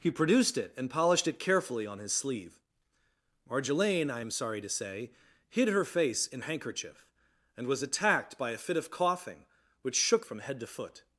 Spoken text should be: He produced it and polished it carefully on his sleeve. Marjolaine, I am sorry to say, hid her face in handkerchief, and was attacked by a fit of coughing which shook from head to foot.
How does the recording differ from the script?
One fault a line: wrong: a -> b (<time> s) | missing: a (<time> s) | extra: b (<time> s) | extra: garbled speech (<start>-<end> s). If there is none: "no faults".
no faults